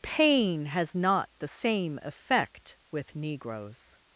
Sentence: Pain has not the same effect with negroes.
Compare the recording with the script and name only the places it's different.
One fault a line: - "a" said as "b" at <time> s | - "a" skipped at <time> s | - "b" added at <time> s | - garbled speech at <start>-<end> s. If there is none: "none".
none